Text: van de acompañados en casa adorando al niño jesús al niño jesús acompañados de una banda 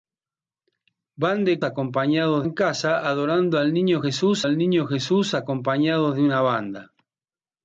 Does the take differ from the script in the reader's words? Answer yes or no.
no